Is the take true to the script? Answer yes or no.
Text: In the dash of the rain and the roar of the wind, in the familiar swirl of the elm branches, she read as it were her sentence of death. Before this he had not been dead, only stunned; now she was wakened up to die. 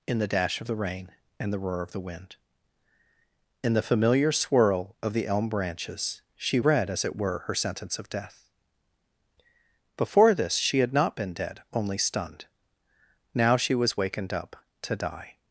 no